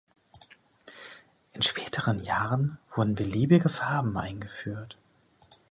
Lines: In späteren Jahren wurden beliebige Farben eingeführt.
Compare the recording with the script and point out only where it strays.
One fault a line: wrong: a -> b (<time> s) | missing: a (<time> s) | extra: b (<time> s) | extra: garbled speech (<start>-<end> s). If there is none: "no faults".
no faults